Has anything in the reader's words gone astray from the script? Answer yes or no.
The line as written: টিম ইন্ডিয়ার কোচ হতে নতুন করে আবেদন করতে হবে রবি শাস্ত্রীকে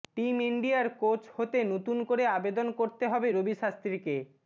no